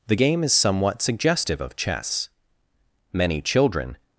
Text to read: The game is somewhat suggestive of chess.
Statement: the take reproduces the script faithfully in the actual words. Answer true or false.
false